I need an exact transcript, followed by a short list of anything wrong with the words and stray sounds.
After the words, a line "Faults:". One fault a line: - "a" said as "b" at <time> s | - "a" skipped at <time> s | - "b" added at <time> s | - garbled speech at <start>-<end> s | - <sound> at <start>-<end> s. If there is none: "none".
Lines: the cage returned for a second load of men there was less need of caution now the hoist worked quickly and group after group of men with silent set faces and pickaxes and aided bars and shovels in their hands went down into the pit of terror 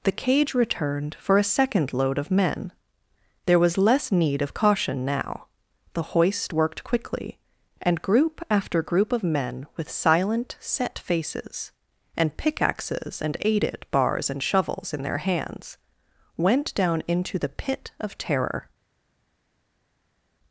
the cage returned for a second load of men there was less need of caution now the hoist worked quickly and group after group of men with silent set faces and pickaxes and aided bars and shovels in their hands went down into the pit of terror
Faults:
none